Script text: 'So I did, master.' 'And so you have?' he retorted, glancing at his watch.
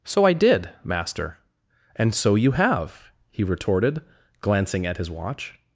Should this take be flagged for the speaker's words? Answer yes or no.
no